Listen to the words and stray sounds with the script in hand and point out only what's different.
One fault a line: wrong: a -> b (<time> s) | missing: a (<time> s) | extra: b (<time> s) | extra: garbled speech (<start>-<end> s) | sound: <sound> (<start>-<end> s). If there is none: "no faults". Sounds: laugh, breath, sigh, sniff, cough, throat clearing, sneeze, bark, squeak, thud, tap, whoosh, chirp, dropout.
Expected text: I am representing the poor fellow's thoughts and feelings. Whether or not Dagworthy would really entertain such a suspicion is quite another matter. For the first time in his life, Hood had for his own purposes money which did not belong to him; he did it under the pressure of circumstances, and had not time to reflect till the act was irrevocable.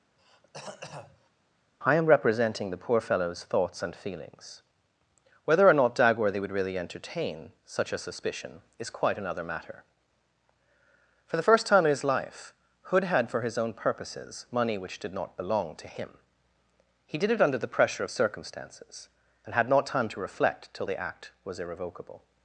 sound: throat clearing (0.2-1.3 s)